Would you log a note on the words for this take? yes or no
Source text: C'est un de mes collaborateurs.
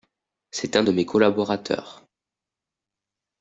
no